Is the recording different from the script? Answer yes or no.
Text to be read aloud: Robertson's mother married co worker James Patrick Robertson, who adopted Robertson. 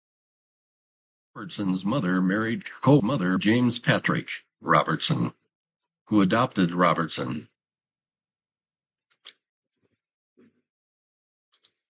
yes